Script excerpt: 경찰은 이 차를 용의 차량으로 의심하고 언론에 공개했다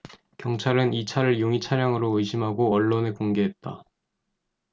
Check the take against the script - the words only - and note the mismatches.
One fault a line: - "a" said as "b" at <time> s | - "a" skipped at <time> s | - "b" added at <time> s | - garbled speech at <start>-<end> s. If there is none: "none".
none